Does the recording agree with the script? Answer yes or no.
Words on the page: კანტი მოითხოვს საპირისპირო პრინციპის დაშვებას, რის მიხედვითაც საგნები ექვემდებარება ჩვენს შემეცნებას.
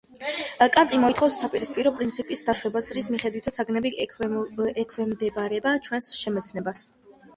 yes